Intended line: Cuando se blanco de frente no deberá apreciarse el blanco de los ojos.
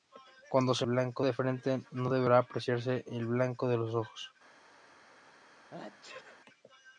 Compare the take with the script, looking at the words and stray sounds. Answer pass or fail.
fail